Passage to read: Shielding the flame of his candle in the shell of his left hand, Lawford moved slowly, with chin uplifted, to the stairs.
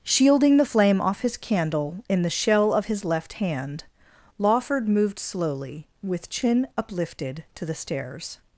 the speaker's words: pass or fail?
fail